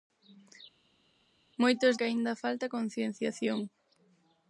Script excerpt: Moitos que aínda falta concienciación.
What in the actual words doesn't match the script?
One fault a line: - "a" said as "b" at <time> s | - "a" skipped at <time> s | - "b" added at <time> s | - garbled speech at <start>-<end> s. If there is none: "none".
none